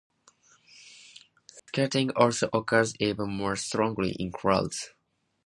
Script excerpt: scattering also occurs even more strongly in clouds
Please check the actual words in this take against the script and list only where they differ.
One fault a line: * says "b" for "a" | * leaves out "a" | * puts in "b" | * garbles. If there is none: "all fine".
all fine